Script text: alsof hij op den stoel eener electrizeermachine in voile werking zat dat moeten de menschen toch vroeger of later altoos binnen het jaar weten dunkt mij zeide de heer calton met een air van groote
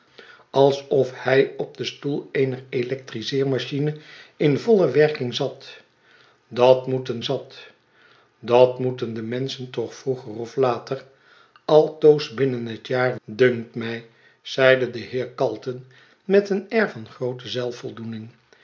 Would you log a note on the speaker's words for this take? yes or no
yes